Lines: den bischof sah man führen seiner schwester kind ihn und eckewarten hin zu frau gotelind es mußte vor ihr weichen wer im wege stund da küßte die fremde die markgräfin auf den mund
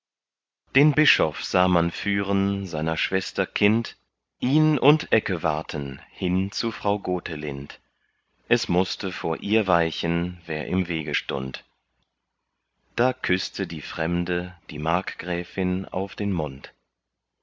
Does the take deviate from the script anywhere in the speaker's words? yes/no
no